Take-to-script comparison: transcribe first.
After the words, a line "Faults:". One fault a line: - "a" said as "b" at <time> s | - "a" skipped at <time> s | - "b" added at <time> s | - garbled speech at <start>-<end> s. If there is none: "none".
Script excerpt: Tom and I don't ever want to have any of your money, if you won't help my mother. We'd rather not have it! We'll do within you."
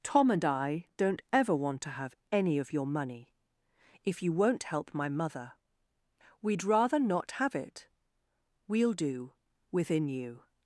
Tom and I don't ever want to have any of your money, if you won't help my mother. We'd rather not have it! We'll do within you."
Faults:
none